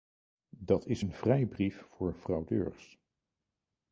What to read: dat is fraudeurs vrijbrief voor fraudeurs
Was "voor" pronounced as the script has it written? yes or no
yes